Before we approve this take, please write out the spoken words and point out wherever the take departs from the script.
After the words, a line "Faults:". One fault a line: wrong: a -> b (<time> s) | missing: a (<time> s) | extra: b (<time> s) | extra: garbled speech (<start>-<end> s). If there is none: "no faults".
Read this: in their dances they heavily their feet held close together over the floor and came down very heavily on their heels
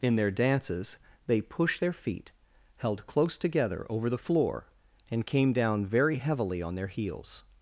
in their dances they pushed their feet held close together over the floor and came down very heavily on their heels
Faults:
wrong: heavily -> pushed (1.4 s)